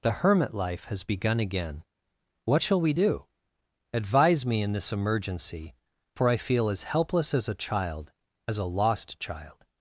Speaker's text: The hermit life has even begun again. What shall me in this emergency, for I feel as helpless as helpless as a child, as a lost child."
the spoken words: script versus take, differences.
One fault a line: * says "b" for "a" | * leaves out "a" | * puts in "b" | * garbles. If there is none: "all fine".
* leaves out "even"
* puts in "we do Advise"
* leaves out "helpless as"